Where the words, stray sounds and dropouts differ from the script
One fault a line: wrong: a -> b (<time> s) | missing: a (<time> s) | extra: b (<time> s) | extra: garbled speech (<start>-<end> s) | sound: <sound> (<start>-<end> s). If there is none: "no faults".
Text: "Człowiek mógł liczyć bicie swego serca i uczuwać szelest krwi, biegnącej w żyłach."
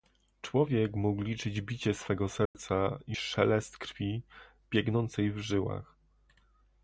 sound: dropout (2.5-2.5 s)
missing: uczuwać (3.2 s)